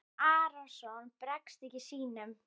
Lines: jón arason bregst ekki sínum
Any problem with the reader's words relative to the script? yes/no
no